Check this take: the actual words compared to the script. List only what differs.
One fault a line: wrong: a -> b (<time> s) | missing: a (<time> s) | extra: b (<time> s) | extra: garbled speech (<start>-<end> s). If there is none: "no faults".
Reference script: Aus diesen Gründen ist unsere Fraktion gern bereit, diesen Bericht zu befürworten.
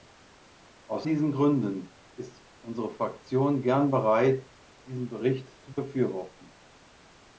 no faults